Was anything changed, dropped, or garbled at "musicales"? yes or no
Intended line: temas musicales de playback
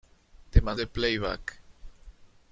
yes